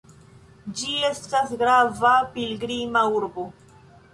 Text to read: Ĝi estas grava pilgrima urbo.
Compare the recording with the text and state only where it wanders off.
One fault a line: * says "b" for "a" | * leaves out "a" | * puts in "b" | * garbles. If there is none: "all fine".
all fine